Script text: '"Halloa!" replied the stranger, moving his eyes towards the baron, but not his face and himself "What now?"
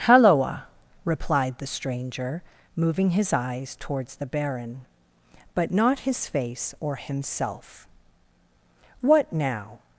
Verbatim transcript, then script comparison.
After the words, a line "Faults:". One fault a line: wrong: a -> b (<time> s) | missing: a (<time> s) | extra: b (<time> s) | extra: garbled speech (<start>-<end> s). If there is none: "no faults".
'"Halloa!" replied the stranger, moving his eyes towards the baron, but not his face or himself "What now?"
Faults:
wrong: and -> or (6.8 s)